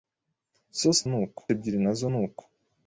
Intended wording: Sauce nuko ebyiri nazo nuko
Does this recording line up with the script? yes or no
yes